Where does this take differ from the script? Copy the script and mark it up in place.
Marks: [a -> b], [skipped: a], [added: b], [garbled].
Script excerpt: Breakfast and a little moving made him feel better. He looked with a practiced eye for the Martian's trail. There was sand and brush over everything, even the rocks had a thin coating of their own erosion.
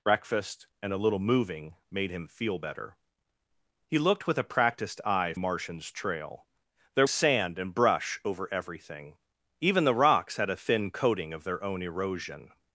Breakfast and a little moving made him feel better. He looked with a practiced eye [skipped: for the] Martian's trail. There [skipped: was] sand and brush over everything, even the rocks had a thin coating of their own erosion.